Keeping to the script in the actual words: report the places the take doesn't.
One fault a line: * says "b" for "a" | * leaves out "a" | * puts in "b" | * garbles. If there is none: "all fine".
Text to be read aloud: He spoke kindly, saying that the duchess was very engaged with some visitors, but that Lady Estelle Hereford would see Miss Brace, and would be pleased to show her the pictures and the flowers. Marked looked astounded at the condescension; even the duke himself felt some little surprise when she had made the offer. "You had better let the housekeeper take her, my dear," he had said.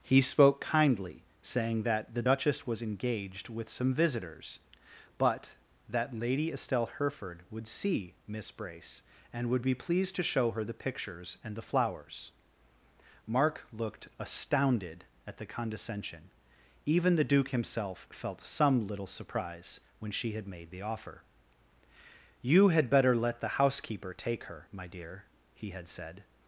* leaves out "very"
* says "Mark" for "Marked"